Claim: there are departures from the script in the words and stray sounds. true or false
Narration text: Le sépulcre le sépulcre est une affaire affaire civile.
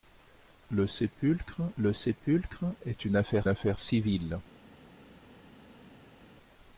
false